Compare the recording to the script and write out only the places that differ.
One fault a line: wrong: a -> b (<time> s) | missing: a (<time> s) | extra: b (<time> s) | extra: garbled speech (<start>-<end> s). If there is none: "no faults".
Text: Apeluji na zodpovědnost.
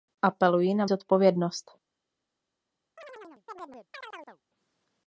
no faults